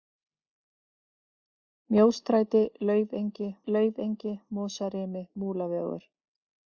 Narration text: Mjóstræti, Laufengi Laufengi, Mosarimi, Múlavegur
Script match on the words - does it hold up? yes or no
yes